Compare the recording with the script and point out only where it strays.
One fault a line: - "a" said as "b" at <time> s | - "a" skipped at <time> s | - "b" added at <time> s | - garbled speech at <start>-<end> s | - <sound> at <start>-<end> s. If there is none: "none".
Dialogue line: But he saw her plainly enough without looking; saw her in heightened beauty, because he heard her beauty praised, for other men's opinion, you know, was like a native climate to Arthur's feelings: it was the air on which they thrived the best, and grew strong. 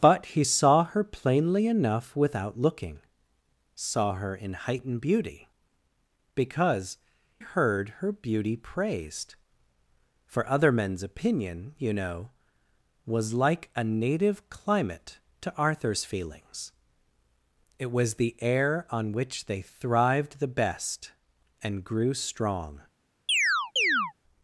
- "he" skipped at 7.0 s
- chirp at 23.3-24.1 s